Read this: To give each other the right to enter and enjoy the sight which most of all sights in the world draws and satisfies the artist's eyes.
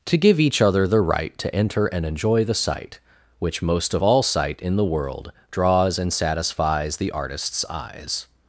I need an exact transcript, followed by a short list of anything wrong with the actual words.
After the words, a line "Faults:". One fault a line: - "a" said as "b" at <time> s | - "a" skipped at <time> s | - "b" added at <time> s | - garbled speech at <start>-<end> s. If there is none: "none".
To give each other the right to enter and enjoy the sight which most of all sight in the world draws and satisfies the artist's eyes.
Faults:
- "sights" said as "sight" at 4.2 s